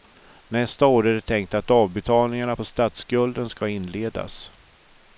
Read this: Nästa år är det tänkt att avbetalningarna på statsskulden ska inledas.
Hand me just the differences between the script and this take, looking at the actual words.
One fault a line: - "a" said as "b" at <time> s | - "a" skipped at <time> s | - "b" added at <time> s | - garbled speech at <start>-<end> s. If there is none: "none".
none